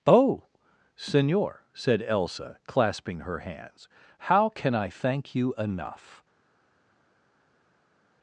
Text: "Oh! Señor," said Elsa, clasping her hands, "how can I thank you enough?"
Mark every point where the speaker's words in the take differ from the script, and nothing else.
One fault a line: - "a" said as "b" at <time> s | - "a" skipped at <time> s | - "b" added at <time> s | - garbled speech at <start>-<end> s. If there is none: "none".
none